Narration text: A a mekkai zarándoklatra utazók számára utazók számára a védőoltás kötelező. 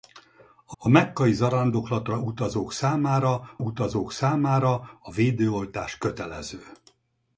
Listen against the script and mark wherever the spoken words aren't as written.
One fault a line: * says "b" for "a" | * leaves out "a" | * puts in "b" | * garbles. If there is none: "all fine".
all fine